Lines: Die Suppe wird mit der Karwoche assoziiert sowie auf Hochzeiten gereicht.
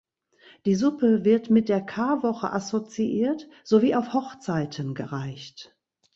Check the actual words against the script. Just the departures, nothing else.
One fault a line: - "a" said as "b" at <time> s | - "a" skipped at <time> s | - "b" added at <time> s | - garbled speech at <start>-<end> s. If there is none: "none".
none